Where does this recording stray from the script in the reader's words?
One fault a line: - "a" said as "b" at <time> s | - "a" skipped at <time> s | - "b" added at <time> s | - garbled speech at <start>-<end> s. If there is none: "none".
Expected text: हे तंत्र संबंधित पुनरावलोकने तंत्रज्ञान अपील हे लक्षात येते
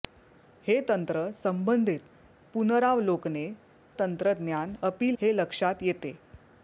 none